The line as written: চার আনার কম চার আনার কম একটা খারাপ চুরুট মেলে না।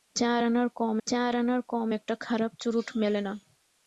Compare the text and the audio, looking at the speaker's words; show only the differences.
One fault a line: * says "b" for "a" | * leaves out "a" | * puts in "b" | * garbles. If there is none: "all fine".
all fine